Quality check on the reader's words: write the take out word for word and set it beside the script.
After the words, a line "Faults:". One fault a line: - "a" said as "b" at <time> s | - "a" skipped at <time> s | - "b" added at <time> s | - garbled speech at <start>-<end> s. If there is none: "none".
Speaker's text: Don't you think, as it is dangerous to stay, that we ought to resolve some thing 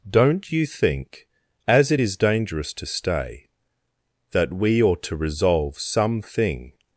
Don't you think, as it is dangerous to stay, that we ought to resolve some thing
Faults:
none